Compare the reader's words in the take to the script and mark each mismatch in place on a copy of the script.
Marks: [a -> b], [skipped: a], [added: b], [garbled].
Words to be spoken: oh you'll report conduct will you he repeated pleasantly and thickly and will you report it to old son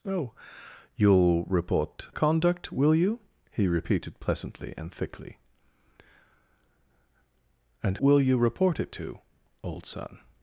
oh you'll report conduct will you he repeated pleasantly and thickly and will you report it to old son